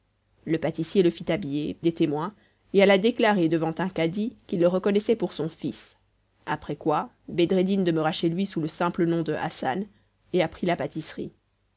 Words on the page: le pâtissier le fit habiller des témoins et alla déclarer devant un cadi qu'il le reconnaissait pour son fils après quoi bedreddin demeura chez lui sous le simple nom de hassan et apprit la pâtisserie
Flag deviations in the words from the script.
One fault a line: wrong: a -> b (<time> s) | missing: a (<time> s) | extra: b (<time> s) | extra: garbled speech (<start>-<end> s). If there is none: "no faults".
no faults